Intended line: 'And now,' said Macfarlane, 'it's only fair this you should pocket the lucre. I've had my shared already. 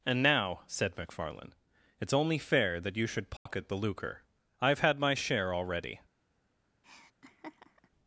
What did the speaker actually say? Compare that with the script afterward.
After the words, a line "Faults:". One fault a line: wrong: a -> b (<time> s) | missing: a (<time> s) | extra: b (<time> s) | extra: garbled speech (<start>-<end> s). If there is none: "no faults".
'And now,' said Macfarlane, 'it's only fair that you should pocket the lucre. I've had my share already.
Faults:
wrong: this -> that (2.8 s)
wrong: shared -> share (5.1 s)